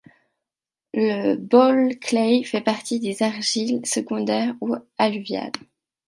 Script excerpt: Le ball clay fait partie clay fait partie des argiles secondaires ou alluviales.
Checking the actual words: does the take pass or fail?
fail